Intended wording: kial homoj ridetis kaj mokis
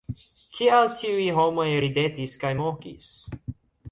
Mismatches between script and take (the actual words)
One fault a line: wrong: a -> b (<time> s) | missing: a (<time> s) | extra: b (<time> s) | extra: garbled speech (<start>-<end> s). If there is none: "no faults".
extra: tiuj (1.0 s)